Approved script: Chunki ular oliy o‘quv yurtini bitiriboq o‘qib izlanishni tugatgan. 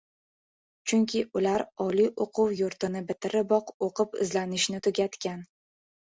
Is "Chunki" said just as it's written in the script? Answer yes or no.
yes